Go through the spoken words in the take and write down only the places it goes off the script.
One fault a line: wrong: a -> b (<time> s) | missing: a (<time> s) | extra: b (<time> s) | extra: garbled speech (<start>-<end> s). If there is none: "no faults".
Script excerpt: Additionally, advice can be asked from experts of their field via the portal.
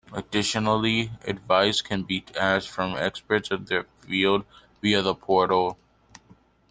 no faults